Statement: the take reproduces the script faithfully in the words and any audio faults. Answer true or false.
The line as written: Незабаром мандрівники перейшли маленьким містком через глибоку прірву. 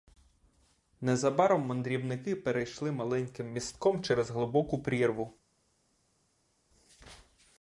true